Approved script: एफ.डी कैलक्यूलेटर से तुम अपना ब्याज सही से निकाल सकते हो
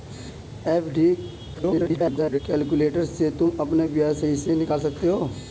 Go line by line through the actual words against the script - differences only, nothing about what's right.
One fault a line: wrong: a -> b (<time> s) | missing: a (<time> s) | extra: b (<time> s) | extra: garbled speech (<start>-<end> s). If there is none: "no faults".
extra: garbled speech (1.5-2.4 s)